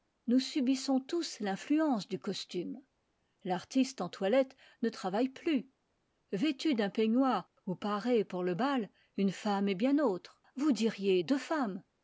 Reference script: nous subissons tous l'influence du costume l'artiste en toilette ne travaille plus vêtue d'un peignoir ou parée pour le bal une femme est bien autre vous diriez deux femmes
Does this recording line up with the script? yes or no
yes